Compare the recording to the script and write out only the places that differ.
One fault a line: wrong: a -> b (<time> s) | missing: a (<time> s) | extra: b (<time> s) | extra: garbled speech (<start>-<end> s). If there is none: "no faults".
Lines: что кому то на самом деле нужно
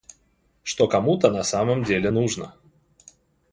no faults